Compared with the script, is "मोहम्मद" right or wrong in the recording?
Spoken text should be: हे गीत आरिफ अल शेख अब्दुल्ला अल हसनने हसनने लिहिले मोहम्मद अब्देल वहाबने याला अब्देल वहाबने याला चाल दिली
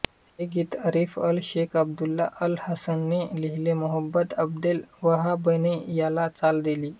right